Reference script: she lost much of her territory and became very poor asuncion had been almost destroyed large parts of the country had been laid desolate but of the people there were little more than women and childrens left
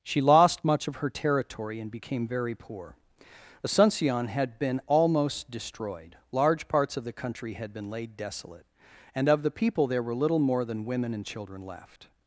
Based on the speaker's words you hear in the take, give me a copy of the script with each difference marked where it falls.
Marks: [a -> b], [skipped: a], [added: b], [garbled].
she lost much of her territory and became very poor asuncion had been almost destroyed large parts of the country had been laid desolate [but -> and] of the people there were little more than women and [childrens -> children] left